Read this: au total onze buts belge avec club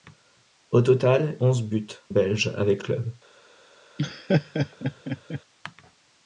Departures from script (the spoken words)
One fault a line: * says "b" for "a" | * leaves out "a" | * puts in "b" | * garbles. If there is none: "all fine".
all fine